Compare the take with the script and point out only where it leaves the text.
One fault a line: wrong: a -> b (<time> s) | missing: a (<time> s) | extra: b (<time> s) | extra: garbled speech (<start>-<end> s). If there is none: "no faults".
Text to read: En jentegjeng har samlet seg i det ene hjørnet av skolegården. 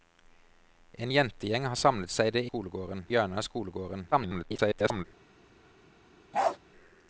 wrong: ene -> skolegården (2.4 s)
extra: garbled speech (4.1-5.0 s)